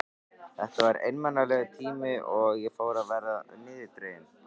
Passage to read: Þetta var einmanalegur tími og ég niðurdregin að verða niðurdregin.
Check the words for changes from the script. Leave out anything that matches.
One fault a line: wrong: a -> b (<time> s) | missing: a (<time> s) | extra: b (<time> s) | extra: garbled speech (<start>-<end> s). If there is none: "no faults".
wrong: niðurdregin -> fór (2.8 s)